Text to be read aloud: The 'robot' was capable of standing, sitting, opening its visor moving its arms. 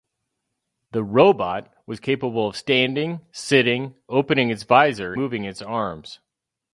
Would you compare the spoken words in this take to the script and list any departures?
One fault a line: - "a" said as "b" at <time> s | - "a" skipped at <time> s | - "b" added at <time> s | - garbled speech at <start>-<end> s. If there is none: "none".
none